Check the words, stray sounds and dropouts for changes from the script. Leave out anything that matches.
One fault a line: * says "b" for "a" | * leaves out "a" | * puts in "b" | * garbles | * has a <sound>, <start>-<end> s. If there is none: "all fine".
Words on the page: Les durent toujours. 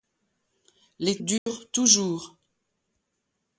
* has a dropout, 1.4-1.5 s